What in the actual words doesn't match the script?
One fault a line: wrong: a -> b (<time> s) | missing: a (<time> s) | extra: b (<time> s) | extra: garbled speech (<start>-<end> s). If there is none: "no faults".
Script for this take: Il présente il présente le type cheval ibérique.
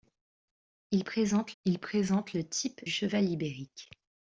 no faults